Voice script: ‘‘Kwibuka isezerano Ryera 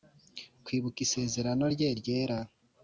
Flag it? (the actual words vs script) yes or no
yes